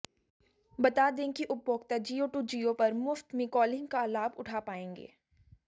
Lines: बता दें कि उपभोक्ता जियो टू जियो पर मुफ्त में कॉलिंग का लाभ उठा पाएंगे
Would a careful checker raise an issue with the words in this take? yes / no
no